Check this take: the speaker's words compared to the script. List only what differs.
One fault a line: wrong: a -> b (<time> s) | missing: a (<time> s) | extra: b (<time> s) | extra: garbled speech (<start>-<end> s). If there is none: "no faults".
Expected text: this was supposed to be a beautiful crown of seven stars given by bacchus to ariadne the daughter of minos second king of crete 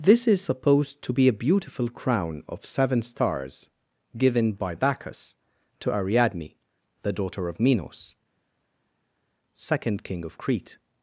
wrong: was -> is (0.3 s)